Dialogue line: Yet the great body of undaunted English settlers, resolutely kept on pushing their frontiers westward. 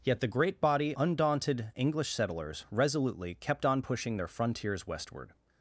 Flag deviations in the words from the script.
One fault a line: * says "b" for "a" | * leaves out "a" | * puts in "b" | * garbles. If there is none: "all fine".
* leaves out "of"